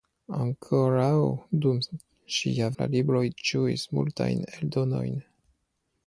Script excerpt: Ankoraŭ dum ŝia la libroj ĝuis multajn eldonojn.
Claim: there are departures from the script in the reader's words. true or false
false